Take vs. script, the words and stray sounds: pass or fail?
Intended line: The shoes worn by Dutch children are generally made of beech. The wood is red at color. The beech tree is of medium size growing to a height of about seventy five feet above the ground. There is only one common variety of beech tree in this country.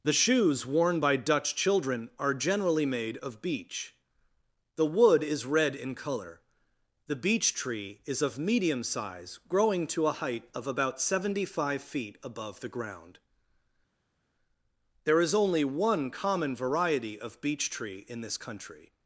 fail